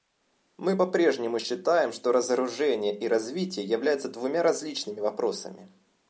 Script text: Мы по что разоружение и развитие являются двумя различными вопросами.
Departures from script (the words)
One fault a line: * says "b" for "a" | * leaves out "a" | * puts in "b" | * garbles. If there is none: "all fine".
* puts in "прежнему считаем"